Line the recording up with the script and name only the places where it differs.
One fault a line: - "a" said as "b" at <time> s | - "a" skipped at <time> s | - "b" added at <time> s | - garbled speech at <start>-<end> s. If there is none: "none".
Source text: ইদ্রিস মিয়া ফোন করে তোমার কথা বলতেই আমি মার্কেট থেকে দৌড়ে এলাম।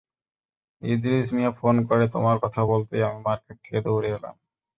none